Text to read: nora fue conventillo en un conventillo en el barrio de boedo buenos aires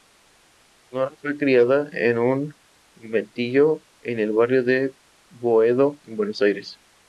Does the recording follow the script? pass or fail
fail